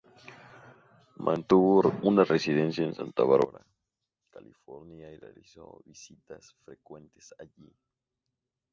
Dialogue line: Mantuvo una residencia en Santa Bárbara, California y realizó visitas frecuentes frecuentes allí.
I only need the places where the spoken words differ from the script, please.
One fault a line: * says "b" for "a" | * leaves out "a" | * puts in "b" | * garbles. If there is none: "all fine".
* leaves out "frecuentes"